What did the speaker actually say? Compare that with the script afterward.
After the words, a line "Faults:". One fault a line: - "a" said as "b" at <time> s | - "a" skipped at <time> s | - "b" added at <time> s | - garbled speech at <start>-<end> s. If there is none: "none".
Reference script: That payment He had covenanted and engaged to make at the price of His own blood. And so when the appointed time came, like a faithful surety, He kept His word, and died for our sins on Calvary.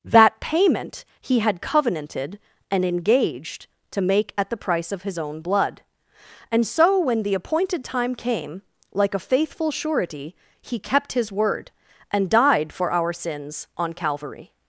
That payment He had covenanted and engaged to make at the price of His own blood. And so when the appointed time came, like a faithful surety, He kept His word, and died for our sins on Calvary.
Faults:
none